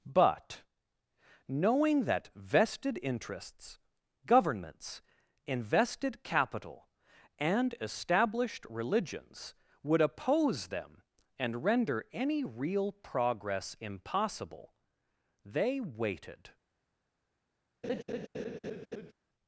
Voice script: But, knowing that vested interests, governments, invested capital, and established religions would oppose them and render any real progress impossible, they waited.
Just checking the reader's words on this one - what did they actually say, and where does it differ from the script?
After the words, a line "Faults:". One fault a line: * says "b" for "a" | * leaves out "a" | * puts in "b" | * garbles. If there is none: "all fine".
But, knowing that vested interests, governments, invested capital, and established religions would oppose them and render any real progress impossible, they waited.
Faults:
all fine